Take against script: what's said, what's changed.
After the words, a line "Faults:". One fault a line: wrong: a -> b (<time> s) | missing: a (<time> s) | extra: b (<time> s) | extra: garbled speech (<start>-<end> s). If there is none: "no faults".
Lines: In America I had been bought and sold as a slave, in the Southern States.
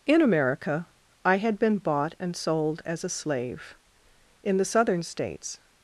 In America I had been bought and sold as a slave, in the Southern States.
Faults:
no faults